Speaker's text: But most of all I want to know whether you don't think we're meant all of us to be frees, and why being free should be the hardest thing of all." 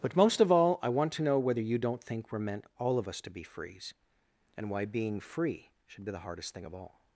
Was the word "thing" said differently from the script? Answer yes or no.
no